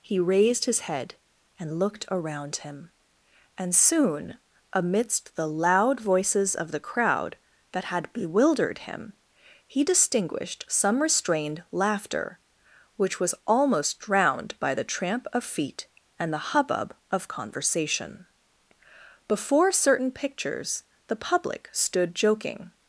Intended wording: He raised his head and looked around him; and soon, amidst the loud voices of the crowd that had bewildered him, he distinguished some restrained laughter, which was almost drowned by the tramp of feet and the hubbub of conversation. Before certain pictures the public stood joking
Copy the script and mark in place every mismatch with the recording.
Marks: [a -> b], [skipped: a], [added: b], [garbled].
He raised his head and looked around him; and soon, amidst the loud voices of the crowd that had bewildered him, he distinguished some restrained laughter, which was almost drowned by the tramp of feet and the hubbub of conversation. Before certain pictures the public stood joking